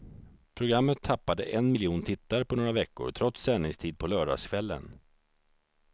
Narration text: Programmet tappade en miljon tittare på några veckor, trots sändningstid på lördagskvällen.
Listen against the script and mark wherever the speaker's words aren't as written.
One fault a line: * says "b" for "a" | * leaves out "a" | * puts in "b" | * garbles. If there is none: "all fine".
all fine